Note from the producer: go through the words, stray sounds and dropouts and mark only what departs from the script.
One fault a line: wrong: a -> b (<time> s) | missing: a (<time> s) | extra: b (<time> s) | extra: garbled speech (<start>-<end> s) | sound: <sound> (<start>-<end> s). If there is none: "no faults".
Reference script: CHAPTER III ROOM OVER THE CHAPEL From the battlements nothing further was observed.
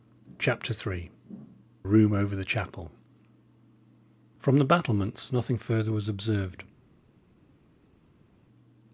no faults